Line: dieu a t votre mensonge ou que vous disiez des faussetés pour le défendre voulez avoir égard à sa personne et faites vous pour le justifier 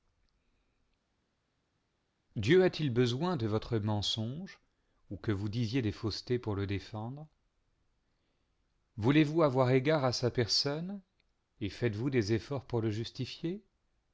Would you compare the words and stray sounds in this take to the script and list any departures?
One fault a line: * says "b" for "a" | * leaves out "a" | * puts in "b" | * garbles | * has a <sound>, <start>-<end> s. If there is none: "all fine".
* puts in "il besoin de"
* puts in "vous"
* puts in "des efforts"